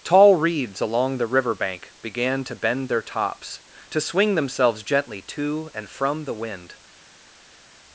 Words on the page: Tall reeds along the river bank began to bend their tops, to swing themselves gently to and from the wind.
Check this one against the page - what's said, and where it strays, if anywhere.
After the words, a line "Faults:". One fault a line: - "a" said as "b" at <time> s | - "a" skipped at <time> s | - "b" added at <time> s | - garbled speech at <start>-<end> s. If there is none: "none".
Tall reeds along the river bank began to bend their tops, to swing themselves gently to and from the wind.
Faults:
none